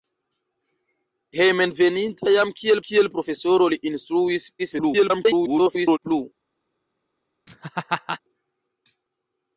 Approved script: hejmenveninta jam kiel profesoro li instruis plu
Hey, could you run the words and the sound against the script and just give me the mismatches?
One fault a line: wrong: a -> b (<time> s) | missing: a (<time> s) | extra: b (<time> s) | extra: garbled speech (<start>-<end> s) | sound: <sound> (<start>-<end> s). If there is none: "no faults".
extra: kiel (2.9 s)
extra: garbled speech (4.6-6.0 s)
sound: laugh (7.5-8.2 s)